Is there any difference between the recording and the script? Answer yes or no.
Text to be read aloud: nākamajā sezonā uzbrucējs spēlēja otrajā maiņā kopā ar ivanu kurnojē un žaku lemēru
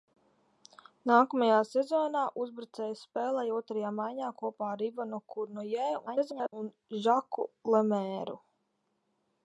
yes